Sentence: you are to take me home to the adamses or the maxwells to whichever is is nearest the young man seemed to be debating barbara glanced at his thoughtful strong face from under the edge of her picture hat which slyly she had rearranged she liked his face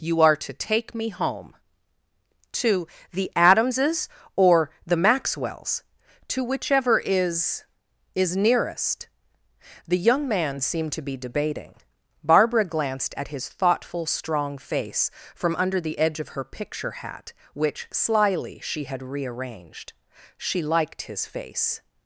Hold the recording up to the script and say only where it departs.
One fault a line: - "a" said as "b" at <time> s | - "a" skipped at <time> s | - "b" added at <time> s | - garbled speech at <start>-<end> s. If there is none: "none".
none